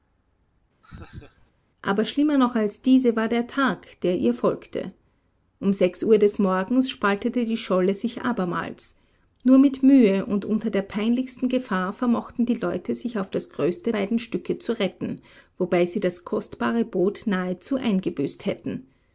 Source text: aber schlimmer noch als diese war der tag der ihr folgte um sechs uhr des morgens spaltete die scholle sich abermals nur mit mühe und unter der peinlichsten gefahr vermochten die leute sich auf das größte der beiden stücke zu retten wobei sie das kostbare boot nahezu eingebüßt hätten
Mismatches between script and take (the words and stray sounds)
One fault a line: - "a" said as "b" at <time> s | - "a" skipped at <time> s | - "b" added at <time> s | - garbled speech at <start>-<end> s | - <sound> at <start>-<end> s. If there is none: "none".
- laugh at 0.8-1.5 s
- "der" skipped at 13.9 s